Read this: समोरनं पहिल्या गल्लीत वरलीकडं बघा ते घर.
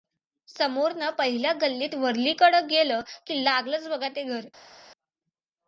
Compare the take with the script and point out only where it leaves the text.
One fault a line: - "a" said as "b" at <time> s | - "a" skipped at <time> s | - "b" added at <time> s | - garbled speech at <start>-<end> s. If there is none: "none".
- "गेलं की लागलंच" added at 2.7 s